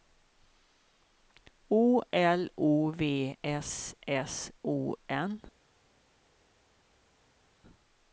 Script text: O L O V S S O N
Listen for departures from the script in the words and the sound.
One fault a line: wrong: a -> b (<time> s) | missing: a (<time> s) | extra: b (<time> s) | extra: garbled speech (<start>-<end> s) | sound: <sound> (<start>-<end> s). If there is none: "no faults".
no faults